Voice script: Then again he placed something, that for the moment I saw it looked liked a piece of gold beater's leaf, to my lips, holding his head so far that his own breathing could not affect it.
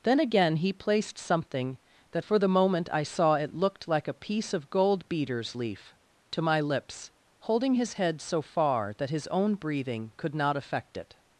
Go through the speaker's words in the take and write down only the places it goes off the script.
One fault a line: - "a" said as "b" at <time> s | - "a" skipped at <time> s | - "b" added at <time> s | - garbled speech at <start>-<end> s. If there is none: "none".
- "liked" said as "like" at 3.9 s